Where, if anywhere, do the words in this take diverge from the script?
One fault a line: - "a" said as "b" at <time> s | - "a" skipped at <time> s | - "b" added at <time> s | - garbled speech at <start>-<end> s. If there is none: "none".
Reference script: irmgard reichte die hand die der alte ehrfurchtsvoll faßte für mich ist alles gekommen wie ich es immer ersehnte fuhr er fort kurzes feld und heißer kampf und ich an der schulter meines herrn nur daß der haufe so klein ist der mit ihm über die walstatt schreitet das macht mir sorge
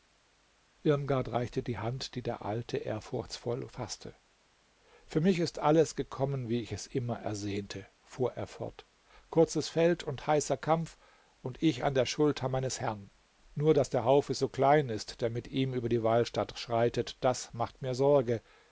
none